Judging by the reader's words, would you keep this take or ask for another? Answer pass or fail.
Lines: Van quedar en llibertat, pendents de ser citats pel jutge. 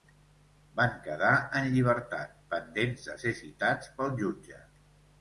pass